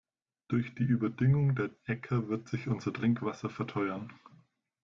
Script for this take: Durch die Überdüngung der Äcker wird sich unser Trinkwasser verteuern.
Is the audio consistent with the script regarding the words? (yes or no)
yes